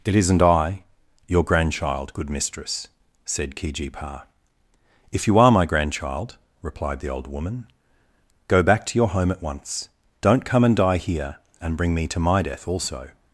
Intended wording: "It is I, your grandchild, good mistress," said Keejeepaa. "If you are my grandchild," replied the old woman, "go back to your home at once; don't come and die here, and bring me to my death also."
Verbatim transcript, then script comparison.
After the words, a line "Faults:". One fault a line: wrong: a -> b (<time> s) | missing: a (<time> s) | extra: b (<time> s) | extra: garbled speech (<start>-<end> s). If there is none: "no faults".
"It isn't I, your grandchild, good mistress," said Keejeepaa. "If you are my grandchild," replied the old woman, "go back to your home at once; don't come and die here, and bring me to my death also."
Faults:
wrong: is -> isn't (0.1 s)